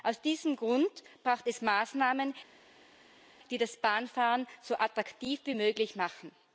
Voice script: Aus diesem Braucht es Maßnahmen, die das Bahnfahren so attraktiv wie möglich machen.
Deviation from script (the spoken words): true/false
true